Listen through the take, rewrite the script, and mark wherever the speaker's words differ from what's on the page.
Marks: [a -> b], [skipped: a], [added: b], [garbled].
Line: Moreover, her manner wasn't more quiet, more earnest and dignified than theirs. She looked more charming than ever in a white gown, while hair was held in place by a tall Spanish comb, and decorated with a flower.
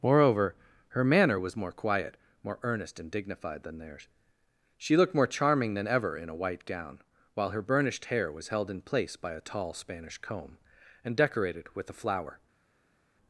Moreover, her manner [wasn't -> was] more quiet, more earnest and dignified than theirs. She looked more charming than ever in a white gown, while [added: her burnished] hair was held in place by a tall Spanish comb, and decorated with a flower.